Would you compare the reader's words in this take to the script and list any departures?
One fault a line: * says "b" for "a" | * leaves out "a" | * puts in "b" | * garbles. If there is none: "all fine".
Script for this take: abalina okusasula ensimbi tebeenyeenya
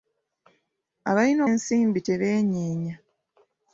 * leaves out "okusasula"